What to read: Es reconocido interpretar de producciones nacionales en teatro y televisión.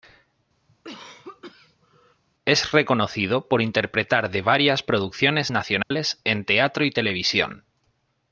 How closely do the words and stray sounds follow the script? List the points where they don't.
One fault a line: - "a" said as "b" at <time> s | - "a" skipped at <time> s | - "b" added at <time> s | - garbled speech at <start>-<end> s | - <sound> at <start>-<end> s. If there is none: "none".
- cough at 0.7-2.2 s
- "por" added at 3.5 s
- "varias" added at 4.4 s
- dropout at 5.8-5.9 s